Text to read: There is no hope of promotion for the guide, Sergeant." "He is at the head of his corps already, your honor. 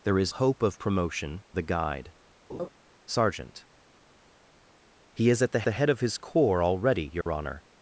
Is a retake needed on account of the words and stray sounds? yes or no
yes